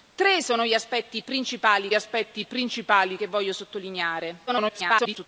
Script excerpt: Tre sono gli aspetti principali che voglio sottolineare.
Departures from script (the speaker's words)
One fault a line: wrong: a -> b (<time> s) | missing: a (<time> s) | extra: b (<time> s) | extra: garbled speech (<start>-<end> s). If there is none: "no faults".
extra: aspetti principali (1.9 s)
extra: garbled speech (4.5-5.3 s)